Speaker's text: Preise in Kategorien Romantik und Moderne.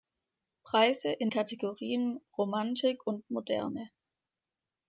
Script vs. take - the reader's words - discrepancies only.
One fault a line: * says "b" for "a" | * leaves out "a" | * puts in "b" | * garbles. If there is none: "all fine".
all fine